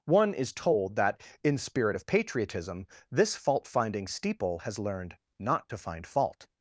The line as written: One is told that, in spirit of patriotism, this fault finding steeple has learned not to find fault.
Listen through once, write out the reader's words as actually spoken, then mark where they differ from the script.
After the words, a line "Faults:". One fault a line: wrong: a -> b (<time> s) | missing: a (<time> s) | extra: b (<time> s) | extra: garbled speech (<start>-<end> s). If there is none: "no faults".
One is told that, in spirit of patriotism, this fault finding steeple has learned not to find fault.
Faults:
no faults